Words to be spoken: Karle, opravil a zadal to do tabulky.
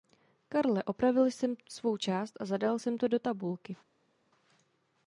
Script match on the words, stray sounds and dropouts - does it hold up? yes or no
no